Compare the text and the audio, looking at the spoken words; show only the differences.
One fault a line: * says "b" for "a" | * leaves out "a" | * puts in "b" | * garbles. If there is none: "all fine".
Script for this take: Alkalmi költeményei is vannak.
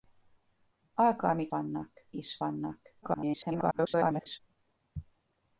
* says "vannak" for "költeményei"
* garbles